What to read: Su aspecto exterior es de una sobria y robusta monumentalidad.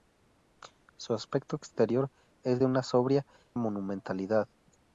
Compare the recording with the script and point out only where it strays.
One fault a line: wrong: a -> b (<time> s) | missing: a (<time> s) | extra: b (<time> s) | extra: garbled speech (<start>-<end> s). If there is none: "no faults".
missing: y robusta (3.3 s)